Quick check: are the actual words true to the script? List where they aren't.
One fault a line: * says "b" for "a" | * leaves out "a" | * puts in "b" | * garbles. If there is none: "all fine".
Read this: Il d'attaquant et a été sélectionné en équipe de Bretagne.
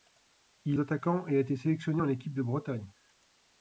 all fine